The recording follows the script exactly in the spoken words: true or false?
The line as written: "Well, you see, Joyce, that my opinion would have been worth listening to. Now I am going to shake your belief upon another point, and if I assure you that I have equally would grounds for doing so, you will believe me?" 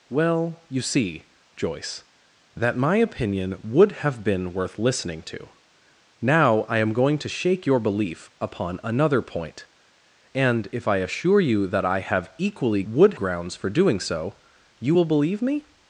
true